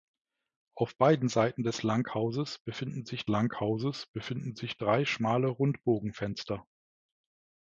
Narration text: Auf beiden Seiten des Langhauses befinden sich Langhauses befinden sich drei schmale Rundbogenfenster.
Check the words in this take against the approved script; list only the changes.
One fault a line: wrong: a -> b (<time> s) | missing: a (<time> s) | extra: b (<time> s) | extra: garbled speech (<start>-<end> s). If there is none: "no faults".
no faults